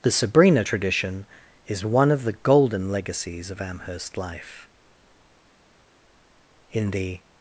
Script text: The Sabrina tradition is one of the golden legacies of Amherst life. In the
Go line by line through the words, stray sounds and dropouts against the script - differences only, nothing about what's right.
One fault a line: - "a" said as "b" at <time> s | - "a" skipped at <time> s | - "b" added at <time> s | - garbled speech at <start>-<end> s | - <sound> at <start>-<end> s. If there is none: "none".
none